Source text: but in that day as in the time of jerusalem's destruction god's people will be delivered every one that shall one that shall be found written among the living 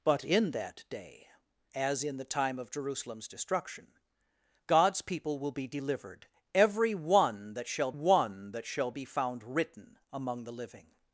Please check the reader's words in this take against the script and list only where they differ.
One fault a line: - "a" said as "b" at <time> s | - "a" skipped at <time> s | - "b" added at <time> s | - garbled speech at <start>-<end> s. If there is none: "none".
none